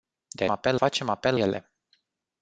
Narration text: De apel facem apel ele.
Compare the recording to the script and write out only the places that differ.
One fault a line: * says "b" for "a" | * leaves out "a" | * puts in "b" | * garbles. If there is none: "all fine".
all fine